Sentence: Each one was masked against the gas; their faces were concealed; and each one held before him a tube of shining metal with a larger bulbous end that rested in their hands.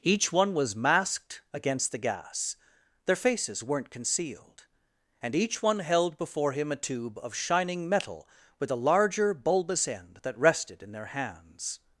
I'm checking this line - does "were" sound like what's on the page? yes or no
no